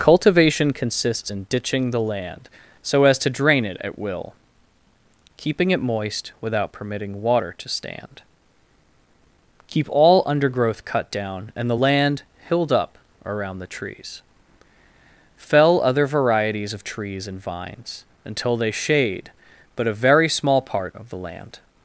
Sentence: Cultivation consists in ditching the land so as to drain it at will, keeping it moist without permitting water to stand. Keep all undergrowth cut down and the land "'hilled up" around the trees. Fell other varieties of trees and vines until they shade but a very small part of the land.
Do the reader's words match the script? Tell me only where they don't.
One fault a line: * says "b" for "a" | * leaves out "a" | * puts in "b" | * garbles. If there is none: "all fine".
all fine